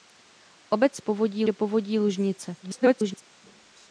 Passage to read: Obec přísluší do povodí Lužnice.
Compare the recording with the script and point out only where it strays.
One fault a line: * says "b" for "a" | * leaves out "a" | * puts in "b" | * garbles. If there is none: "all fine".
* says "povodí" for "přísluší"
* garbles